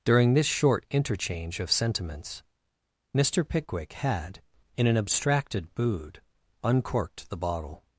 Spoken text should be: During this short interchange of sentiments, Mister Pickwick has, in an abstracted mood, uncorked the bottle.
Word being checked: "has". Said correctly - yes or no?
no